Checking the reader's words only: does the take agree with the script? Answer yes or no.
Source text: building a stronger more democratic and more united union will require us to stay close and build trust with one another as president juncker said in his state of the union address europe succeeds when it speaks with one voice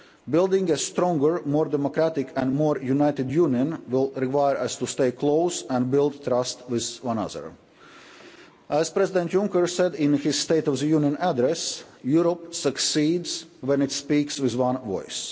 yes